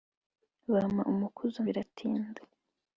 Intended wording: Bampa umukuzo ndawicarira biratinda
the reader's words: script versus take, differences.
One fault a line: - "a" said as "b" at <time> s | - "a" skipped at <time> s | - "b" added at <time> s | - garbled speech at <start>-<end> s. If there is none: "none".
- "ndawicarira" skipped at 1.6 s